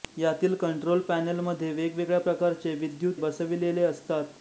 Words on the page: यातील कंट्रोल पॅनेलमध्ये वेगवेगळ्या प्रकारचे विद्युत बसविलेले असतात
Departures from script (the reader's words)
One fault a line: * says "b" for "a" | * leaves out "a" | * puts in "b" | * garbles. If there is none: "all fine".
all fine